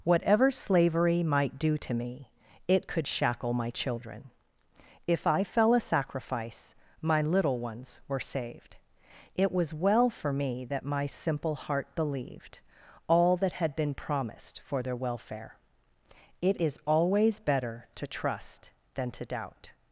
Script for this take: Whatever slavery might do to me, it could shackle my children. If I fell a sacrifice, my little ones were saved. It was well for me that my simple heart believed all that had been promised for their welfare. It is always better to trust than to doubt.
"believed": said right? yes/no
yes